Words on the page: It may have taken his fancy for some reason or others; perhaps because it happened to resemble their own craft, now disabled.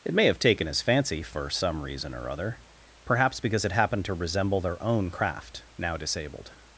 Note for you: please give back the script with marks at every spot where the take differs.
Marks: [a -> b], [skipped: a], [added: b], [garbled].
It may have taken his fancy for some reason or [others; -> other] perhaps because it happened to resemble their own craft, now disabled.